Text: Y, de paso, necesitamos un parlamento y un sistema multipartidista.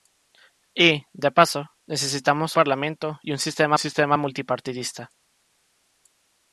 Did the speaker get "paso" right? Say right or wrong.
right